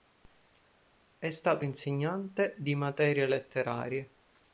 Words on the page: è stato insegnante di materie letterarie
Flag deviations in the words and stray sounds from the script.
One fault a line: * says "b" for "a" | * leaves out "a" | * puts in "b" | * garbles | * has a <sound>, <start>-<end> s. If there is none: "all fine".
all fine